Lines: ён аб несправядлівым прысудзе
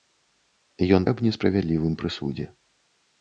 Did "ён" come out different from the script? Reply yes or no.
no